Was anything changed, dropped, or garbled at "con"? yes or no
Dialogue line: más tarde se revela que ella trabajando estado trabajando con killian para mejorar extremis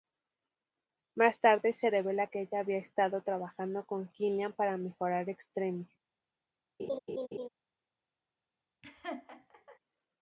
no